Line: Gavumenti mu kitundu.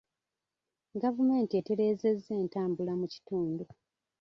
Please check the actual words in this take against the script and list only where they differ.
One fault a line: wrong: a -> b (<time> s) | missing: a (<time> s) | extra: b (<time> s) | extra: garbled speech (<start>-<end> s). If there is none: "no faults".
extra: etereezezza entambula (1.6 s)